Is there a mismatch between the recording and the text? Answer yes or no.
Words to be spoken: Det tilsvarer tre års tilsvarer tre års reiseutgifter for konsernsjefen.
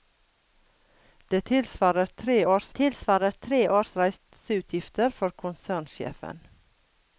no